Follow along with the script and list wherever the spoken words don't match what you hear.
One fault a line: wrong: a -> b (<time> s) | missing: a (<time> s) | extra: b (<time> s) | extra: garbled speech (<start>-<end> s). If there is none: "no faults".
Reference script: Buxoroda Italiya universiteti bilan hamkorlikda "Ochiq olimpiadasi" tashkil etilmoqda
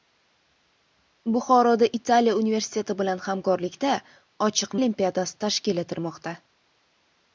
no faults